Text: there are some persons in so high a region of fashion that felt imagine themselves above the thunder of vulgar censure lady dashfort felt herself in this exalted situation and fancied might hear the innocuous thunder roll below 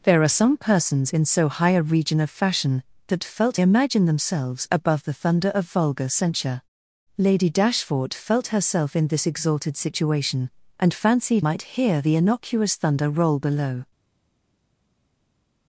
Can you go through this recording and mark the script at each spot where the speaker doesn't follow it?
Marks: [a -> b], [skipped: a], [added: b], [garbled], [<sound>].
there are some persons in so high a region of fashion that felt imagine themselves above the thunder of vulgar censure lady dashfort felt herself in this exalted situation and fancied might hear the innocuous thunder roll below